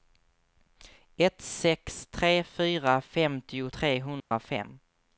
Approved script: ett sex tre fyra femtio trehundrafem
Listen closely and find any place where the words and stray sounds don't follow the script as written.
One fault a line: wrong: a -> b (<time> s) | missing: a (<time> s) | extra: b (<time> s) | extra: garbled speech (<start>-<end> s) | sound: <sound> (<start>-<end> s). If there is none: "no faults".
sound: dropout (4.2-4.3 s)